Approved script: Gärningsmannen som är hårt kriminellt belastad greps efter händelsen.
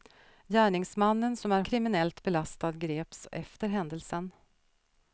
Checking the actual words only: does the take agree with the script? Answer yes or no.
no